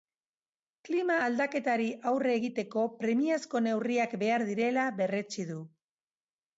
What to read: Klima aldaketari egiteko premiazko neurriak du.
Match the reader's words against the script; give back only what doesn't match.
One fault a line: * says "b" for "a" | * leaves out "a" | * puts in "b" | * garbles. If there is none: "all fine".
* puts in "aurre"
* puts in "behar direla berretsi"